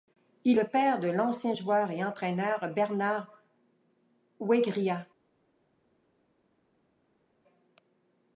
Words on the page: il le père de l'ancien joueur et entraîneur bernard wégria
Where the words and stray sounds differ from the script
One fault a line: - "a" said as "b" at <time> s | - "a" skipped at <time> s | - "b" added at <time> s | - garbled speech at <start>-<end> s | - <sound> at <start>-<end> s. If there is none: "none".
none